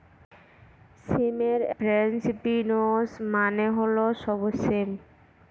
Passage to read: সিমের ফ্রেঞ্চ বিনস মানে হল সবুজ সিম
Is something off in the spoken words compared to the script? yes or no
no